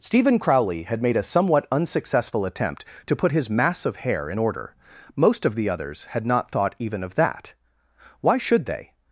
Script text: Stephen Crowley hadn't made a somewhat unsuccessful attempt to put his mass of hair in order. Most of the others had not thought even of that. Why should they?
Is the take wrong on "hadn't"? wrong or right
wrong